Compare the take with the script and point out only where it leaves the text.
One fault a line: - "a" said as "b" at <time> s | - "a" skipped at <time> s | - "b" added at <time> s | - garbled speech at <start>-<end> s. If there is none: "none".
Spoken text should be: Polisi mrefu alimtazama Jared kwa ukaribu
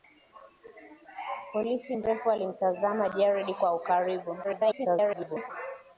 - garbled speech at 4.4-5.5 s